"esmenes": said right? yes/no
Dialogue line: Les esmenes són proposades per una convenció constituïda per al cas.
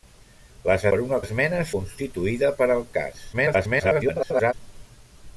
no